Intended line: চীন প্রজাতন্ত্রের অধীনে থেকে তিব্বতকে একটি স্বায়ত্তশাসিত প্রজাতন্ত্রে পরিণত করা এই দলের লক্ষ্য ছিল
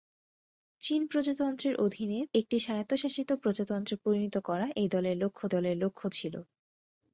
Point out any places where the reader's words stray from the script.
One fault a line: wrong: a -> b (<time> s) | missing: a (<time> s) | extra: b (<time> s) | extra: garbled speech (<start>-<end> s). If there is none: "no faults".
missing: থেকে তিব্বতকে (2.2 s)
extra: দলের লক্ষ্য (5.5 s)